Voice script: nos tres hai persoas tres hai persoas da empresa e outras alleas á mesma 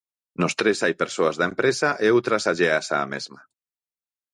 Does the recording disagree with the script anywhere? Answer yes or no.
yes